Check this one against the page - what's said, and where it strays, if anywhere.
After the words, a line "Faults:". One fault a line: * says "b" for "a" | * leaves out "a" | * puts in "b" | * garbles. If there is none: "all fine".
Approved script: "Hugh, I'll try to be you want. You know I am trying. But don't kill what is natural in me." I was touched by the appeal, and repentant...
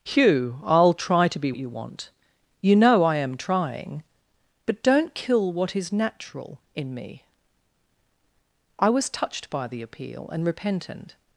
"Hugh, I'll try to be you want. You know I am trying. But don't kill what is natural in me." I was touched by the appeal, and repentant...
Faults:
all fine